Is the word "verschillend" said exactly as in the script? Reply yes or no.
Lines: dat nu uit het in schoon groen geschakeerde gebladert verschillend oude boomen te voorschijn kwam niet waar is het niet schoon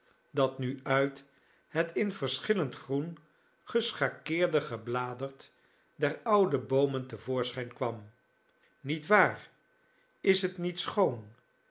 no